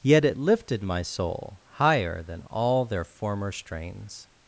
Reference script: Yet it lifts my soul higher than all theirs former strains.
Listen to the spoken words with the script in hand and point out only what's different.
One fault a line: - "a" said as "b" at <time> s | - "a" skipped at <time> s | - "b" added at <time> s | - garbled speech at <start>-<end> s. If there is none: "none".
- "lifts" said as "lifted" at 0.4 s
- "theirs" said as "their" at 2.9 s